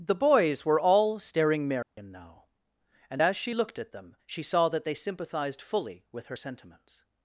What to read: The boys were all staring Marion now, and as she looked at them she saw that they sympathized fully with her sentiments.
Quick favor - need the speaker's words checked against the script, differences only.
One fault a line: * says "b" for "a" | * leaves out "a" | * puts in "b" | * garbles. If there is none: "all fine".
all fine